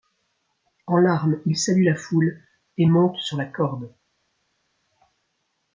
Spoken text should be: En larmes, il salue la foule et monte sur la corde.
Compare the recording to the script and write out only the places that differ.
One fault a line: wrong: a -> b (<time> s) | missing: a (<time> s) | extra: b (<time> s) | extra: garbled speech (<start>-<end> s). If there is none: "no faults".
no faults